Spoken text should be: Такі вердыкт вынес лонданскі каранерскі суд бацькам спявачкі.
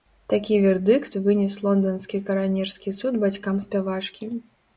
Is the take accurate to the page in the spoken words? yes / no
yes